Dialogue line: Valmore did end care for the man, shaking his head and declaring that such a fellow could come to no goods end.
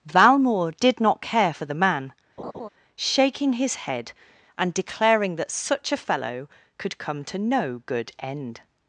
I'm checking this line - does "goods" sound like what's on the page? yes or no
no